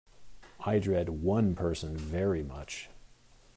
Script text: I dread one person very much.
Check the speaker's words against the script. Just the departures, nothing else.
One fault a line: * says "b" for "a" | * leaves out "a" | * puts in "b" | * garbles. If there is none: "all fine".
all fine